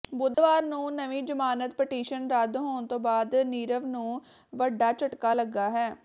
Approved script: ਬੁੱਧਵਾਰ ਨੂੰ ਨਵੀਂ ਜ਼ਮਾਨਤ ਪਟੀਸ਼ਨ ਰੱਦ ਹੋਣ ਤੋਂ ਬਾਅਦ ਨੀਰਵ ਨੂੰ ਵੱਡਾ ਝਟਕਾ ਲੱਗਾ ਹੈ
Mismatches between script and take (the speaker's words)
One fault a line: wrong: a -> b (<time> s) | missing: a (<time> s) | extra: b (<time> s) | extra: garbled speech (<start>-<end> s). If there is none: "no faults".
no faults